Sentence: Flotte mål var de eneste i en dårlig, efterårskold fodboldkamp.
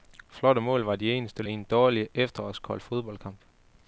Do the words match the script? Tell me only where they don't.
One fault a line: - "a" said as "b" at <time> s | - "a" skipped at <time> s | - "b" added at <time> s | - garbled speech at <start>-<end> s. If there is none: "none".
none